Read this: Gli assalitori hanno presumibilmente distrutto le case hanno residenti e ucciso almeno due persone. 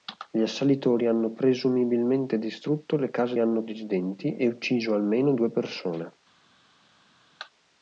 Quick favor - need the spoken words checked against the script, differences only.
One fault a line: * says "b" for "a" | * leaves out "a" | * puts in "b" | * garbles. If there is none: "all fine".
all fine